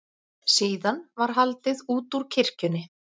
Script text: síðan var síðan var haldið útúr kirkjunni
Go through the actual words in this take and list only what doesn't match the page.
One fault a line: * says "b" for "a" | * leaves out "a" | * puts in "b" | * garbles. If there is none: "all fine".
* leaves out "síðan var"